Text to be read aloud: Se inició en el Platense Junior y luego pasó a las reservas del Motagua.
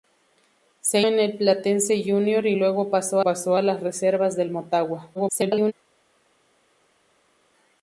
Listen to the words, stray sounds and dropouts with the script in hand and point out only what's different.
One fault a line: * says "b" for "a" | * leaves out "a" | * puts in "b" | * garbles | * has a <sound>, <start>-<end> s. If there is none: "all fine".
* leaves out "inició"
* puts in "pasó"
* garbles